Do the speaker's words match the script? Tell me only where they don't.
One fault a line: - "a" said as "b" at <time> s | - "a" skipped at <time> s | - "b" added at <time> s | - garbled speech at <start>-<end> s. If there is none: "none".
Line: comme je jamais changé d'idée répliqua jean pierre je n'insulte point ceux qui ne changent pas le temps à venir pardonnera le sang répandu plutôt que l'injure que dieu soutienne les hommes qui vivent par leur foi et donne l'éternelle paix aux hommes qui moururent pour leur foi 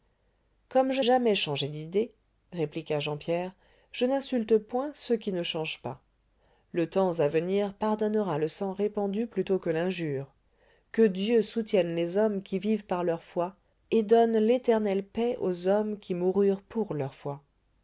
none